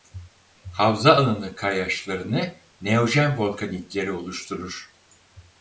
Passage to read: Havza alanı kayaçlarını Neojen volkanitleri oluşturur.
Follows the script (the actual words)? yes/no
yes